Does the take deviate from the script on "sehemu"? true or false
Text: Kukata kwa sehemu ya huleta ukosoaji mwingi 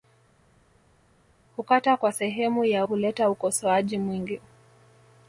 false